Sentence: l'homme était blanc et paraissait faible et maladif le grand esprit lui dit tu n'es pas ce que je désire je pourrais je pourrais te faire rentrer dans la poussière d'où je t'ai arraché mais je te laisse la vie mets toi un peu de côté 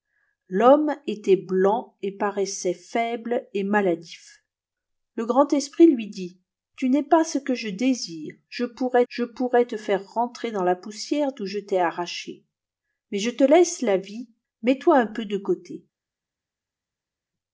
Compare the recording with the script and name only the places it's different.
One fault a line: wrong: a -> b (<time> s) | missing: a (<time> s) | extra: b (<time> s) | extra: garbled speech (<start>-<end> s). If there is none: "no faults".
no faults